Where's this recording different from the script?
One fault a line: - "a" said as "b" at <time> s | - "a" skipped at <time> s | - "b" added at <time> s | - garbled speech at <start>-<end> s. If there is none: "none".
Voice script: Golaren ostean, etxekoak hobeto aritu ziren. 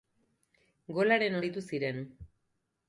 - "ostean etxekoak hobeto" skipped at 1.4 s